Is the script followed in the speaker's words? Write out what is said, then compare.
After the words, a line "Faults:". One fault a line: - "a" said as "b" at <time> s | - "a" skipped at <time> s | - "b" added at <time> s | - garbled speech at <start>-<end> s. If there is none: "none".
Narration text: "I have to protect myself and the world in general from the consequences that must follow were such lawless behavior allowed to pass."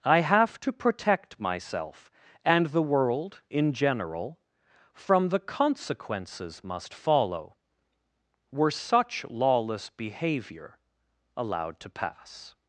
"I have to protect myself and the world in general from the consequences must follow were such lawless behavior allowed to pass."
Faults:
- "that" skipped at 6.6 s